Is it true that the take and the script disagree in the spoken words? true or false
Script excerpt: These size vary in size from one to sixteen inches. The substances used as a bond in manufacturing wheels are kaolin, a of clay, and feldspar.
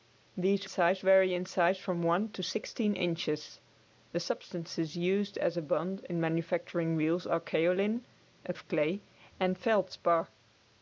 false